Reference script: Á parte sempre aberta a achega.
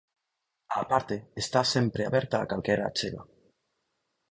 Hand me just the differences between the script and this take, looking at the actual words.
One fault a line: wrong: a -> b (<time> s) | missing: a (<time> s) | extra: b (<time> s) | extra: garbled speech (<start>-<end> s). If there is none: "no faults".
extra: está (1.4 s)
extra: calquera (2.5 s)